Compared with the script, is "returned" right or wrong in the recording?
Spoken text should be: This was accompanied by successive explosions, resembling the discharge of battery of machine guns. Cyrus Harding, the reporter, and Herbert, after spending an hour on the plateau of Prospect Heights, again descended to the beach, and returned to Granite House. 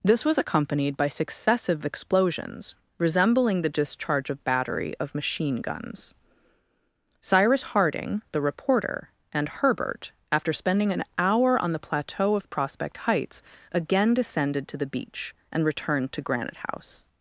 right